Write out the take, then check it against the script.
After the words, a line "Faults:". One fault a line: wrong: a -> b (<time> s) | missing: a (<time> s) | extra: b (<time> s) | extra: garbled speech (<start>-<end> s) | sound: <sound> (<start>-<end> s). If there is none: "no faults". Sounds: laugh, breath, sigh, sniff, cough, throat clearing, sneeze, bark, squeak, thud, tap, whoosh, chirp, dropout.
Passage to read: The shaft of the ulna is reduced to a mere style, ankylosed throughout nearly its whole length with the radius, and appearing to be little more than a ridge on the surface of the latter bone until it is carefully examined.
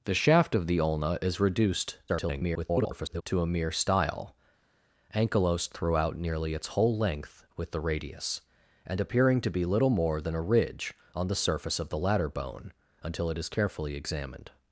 The shaft of the ulna is reduced [garbled] to a mere style, ankylosed throughout nearly its whole length with the radius, and appearing to be little more than a ridge on the surface of the latter bone until it is carefully examined.
Faults:
extra: garbled speech (2.1-3.2 s)